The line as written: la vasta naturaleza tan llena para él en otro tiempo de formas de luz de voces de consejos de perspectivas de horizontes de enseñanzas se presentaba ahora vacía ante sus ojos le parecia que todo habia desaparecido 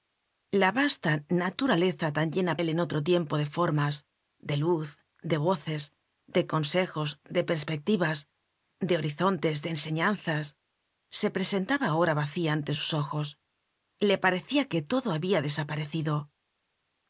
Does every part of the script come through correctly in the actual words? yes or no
no